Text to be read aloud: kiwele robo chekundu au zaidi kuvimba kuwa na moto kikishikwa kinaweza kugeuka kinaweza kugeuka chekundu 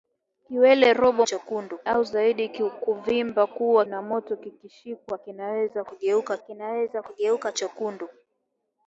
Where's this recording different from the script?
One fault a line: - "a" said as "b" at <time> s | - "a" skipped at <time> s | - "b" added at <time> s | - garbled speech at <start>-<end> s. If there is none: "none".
none